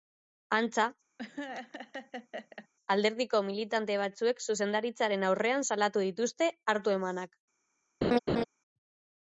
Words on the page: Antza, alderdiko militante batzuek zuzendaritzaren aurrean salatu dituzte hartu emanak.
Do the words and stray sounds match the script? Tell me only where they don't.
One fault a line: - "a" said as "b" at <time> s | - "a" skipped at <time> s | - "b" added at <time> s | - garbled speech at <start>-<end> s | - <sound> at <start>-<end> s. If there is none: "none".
- laugh at 1.2-2.7 s
- laugh at 8.0-8.4 s